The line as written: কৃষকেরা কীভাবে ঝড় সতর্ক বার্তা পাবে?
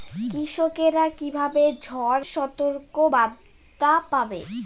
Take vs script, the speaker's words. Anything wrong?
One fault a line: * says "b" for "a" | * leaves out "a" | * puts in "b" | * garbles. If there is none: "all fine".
all fine